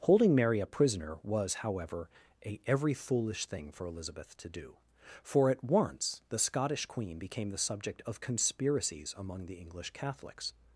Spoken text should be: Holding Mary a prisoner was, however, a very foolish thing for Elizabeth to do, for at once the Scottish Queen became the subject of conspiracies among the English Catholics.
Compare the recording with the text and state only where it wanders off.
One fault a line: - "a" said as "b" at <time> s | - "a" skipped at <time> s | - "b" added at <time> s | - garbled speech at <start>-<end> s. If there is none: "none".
- "very" said as "every" at 2.6 s